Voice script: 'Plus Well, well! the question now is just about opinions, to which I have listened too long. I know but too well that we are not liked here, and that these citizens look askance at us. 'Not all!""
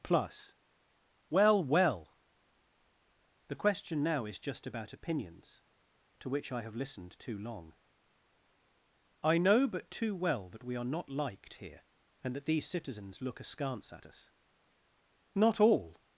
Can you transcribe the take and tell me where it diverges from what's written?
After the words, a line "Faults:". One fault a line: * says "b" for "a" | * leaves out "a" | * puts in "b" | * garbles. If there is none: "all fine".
'Plus Well, well! the question now is just about opinions, to which I have listened too long. I know but too well that we are not liked here, and that these citizens look askance at us. 'Not all!""
Faults:
all fine